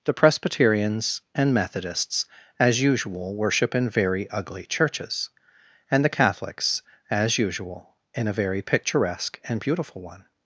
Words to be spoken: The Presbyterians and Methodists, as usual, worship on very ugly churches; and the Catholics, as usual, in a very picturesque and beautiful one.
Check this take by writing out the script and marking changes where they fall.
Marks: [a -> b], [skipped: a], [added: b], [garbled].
The Presbyterians and Methodists, as usual, worship [on -> in] very ugly churches; and the Catholics, as usual, in a very picturesque and beautiful one.